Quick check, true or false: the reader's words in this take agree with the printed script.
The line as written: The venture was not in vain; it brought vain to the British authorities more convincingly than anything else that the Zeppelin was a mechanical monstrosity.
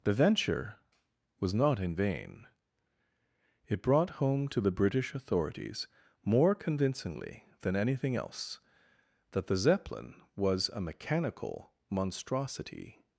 false